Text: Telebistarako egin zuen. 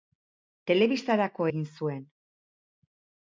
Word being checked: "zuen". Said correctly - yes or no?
yes